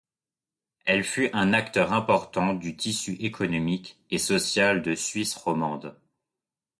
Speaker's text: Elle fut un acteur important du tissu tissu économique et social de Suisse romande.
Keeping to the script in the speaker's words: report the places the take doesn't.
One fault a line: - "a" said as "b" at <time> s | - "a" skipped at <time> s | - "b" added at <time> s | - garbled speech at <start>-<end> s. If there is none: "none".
- "tissu" skipped at 3.1 s